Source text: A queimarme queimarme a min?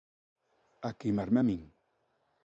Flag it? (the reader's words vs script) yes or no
yes